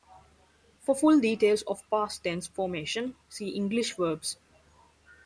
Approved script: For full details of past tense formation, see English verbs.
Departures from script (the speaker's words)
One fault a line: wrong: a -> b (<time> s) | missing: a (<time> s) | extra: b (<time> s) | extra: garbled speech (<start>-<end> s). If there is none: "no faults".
no faults